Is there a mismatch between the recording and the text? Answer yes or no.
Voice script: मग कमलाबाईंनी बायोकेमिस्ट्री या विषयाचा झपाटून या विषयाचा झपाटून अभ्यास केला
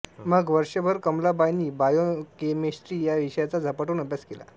yes